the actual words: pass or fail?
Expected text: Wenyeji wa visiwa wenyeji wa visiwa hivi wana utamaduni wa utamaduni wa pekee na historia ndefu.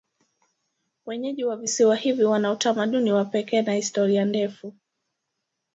fail